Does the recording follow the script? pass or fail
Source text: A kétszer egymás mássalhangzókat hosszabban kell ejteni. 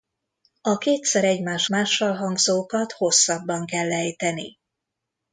pass